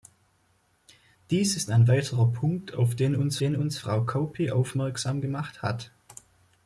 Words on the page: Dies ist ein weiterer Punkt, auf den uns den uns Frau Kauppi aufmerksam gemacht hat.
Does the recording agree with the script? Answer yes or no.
yes